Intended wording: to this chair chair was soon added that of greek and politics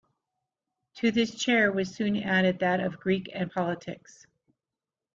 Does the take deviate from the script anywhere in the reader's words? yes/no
yes